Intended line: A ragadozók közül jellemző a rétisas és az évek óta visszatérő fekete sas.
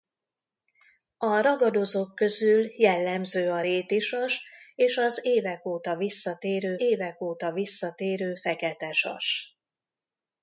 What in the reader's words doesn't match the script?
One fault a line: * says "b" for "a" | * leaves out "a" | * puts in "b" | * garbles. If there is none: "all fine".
* puts in "évek óta visszatérő"